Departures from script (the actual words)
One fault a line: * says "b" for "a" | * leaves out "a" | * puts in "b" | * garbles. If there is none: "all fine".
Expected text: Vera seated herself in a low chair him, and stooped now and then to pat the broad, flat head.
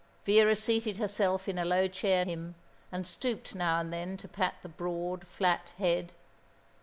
all fine